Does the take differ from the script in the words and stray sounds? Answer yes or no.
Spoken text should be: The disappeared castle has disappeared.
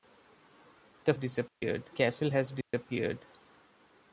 yes